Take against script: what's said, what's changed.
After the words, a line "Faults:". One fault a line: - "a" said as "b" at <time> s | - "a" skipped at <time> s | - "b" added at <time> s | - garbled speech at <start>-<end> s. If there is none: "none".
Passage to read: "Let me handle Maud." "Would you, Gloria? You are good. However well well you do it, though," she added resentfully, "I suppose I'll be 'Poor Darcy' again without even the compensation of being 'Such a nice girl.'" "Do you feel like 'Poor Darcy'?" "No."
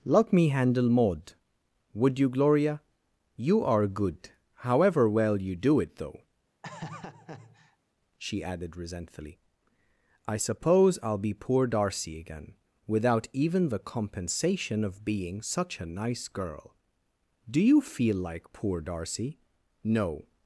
"Let me handle Maud." "Would you, Gloria? You are good. However well you do it, though," she added resentfully, "I suppose I'll be 'Poor Darcy' again without even the compensation of being 'Such a nice girl.'" "Do you feel like 'Poor Darcy'?" "No."
Faults:
- "well" skipped at 5.4 s